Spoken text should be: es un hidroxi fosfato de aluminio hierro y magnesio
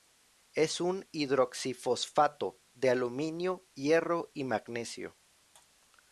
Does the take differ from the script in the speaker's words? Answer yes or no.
no